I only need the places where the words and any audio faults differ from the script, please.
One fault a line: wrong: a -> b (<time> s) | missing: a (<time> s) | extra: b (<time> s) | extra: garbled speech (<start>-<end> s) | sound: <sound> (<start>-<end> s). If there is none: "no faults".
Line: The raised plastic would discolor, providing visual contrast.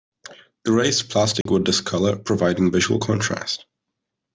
sound: dropout (1.4-1.5 s)